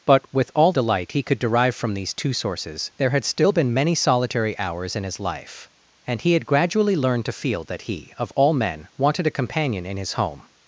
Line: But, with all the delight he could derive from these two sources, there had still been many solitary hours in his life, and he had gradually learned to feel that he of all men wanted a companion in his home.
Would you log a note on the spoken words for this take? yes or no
yes